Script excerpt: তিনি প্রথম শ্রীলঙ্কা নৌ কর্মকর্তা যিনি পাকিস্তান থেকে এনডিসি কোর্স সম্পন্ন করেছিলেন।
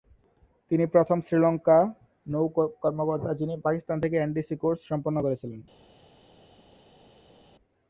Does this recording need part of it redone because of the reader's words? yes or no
no